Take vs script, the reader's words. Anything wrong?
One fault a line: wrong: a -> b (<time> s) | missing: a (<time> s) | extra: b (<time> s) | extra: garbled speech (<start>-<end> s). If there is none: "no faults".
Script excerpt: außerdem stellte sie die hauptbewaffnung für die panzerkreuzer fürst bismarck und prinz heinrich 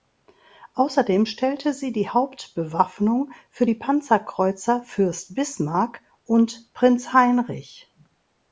no faults